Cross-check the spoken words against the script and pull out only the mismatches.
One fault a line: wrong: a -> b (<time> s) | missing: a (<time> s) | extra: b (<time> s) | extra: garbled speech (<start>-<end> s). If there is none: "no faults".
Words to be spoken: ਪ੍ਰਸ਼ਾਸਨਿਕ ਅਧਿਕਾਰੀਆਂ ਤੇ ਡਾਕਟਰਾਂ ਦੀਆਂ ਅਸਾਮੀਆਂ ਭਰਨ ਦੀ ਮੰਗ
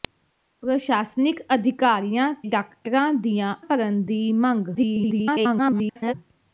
missing: ਤੇ (2.3 s)
missing: ਅਸਾਮੀਆਂ (3.5 s)
extra: garbled speech (4.7-6.1 s)